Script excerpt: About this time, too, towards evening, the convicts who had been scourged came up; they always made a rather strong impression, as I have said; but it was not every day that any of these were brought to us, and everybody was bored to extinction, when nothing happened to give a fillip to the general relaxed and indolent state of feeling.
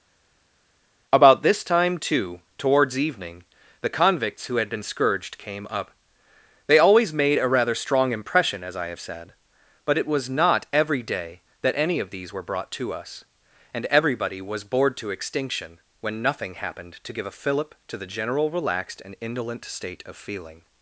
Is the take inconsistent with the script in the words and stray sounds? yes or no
no